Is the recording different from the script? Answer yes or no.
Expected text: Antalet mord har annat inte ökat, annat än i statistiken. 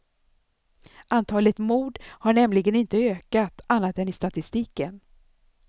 yes